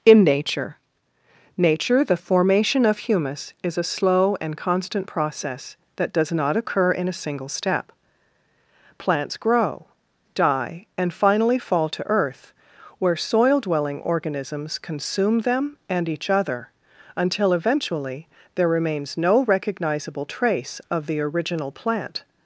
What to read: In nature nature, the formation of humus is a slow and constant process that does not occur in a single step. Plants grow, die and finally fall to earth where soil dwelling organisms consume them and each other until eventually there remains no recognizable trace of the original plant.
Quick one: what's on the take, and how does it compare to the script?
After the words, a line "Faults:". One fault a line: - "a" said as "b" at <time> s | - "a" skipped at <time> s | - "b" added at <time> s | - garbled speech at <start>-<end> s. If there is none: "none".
In nature nature, the formation of humus is a slow and constant process that does not occur in a single step. Plants grow, die and finally fall to earth where soil dwelling organisms consume them and each other until eventually there remains no recognizable trace of the original plant.
Faults:
none